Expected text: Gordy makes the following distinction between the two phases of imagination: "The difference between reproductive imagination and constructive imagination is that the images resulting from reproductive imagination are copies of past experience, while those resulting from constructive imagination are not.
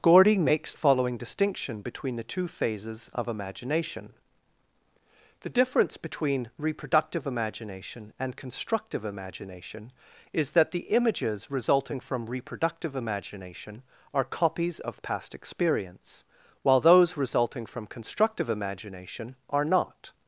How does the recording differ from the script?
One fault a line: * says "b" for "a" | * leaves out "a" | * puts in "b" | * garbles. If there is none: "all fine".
* leaves out "the"